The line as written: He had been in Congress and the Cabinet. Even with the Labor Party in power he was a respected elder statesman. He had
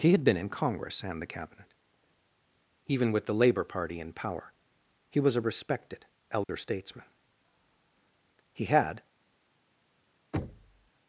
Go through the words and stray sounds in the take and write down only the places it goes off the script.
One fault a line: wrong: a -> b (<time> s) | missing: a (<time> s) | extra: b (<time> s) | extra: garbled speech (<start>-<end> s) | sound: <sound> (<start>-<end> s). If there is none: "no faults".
sound: dropout (6.4-6.5 s)
sound: thud (10.3-10.9 s)